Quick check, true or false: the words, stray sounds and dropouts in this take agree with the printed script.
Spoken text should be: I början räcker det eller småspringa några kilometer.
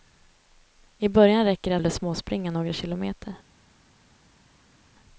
true